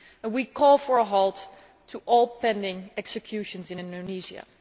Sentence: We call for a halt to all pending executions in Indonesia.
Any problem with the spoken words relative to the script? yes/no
no